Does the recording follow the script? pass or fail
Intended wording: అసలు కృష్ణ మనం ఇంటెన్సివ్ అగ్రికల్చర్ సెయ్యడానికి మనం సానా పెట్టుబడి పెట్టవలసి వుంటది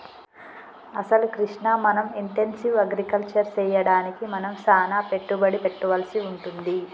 pass